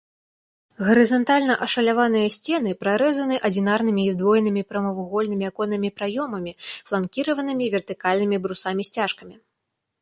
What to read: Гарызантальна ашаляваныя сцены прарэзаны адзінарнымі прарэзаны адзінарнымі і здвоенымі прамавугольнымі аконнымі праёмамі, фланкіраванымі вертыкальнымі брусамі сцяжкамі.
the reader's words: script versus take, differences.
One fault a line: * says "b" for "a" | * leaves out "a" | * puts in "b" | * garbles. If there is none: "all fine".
* leaves out "прарэзаны адзінарнымі"